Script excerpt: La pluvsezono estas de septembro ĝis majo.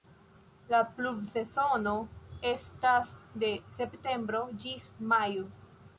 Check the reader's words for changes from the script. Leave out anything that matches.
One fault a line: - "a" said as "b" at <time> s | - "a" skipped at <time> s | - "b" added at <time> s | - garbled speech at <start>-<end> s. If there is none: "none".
none